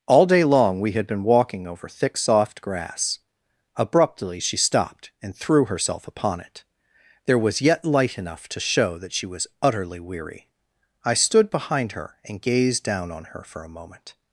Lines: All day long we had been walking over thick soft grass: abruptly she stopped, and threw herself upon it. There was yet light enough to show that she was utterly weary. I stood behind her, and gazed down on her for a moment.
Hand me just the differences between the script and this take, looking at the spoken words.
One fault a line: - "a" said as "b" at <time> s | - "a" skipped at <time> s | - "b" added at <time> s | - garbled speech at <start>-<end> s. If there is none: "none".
none